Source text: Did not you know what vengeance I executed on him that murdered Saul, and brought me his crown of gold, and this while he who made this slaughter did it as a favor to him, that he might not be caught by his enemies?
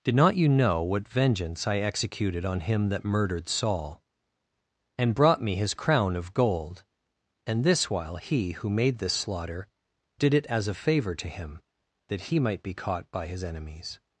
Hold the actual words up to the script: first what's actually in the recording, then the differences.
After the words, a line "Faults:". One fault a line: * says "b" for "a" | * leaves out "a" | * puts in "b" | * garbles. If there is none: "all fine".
Did not you know what vengeance I executed on him that murdered Saul, and brought me his crown of gold, and this while he who made this slaughter did it as a favor to him, that he might be caught by his enemies?
Faults:
* leaves out "not"